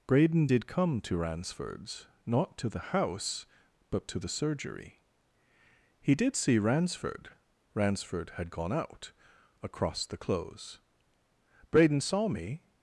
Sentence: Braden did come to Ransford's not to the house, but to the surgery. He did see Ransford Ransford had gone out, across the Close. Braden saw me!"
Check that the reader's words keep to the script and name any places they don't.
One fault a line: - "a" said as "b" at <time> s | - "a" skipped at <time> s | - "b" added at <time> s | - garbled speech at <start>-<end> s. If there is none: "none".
none